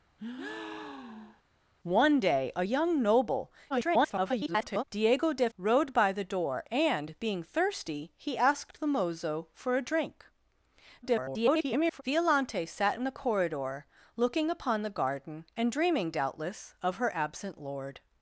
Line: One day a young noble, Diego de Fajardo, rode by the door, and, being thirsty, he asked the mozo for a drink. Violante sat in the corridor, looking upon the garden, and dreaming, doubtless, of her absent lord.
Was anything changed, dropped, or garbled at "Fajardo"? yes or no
yes